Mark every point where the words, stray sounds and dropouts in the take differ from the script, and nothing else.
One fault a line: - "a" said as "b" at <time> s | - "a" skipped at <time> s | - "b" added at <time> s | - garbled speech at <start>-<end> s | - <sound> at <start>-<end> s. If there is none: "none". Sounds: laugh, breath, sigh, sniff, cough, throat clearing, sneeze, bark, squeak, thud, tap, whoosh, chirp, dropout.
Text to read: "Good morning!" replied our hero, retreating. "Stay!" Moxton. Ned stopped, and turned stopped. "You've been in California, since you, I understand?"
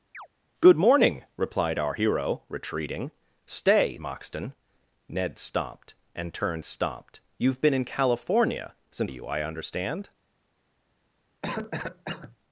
- chirp at 0.1-0.3 s
- cough at 11.4-12.4 s